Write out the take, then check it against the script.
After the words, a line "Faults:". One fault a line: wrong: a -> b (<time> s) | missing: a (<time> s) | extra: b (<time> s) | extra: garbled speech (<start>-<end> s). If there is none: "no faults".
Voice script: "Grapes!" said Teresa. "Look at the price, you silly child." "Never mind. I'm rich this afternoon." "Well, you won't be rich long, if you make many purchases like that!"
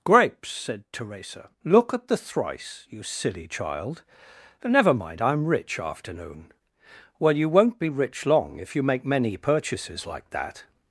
"Grapes!" said Teresa. "Look at the thrice, you silly child." "Never mind. I'm rich afternoon." "Well, you won't be rich long, if you make many purchases like that!"
Faults:
wrong: price -> thrice (2.2 s)
missing: this (5.8 s)